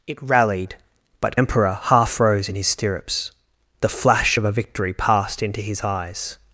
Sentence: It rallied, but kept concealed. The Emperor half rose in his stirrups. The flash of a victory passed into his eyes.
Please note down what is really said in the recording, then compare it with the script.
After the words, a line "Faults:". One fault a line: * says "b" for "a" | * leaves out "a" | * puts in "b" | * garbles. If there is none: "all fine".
It rallied, but Emperor half rose in his stirrups. The flash of a victory passed into his eyes.
Faults:
* leaves out "kept concealed The"